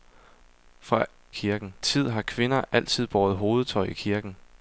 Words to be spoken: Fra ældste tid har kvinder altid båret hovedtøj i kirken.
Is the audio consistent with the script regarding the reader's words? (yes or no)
no